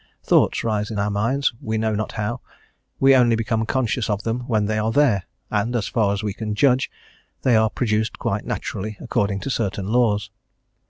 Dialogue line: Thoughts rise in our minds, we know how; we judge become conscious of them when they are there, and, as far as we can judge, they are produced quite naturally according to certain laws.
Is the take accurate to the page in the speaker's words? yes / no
no